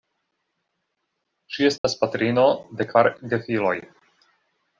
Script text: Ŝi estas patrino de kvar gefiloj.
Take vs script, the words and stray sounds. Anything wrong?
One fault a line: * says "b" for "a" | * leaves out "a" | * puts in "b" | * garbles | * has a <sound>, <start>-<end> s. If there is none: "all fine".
* has a dropout, 1.8-1.8 s